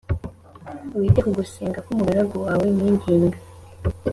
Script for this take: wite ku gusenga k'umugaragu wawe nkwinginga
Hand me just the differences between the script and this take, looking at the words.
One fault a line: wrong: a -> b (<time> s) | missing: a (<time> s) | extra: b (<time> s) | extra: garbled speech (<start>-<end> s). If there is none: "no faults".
no faults